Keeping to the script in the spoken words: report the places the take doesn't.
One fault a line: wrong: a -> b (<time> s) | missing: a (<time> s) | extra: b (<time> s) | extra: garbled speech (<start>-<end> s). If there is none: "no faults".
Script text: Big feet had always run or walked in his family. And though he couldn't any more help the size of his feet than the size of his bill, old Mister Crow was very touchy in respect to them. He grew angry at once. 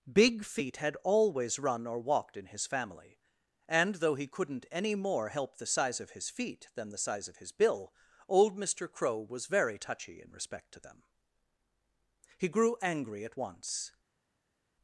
no faults